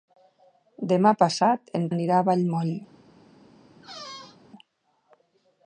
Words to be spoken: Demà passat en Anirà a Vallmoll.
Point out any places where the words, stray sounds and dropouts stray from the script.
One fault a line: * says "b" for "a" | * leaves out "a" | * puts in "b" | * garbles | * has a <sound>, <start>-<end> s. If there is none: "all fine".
* has a squeak, 3.8-4.4 s